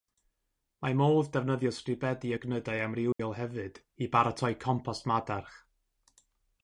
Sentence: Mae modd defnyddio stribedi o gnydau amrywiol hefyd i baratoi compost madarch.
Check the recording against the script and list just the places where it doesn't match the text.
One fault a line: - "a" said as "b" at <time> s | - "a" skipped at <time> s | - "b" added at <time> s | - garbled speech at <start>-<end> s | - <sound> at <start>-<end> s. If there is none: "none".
- dropout at 3.1-3.2 s